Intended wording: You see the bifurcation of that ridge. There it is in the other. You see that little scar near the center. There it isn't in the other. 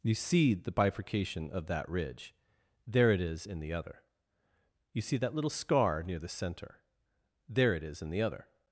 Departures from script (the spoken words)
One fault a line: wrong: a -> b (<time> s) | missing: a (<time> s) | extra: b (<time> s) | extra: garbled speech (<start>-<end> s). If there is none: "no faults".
wrong: isn't -> is (7.8 s)